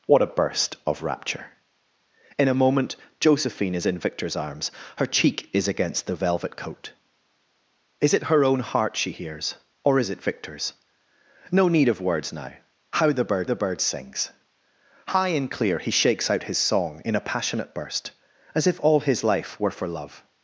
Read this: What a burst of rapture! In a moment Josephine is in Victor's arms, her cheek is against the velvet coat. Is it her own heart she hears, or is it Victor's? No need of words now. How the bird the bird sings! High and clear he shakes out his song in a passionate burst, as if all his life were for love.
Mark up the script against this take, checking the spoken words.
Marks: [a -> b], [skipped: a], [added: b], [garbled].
What a burst of rapture! In a moment Josephine is in Victor's arms, her cheek is against the velvet coat. Is it her own heart she hears, or is it Victor's? No need of words now. How the bird the bird sings! High and clear he shakes out his song in a passionate burst, as if all his life were for love.